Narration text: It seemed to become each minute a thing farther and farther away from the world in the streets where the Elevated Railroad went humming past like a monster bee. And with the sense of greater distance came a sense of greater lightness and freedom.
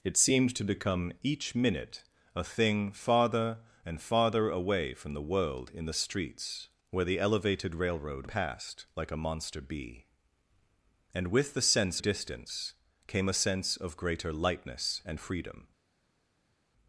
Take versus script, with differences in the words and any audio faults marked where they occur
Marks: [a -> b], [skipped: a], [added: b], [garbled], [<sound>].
It seemed to become each minute a thing farther and farther away from the world in the streets where the Elevated Railroad [skipped: went humming] past like a monster bee. And with the sense [skipped: of greater] distance came a sense of greater lightness and freedom.